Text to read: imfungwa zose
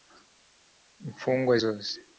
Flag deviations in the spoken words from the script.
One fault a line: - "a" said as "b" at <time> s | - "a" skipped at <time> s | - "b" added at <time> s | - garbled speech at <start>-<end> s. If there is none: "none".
none